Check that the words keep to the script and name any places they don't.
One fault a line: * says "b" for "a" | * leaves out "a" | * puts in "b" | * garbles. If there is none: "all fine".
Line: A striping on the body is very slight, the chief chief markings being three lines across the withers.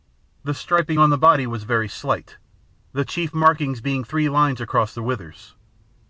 * says "The" for "A"
* says "was" for "is"
* leaves out "chief"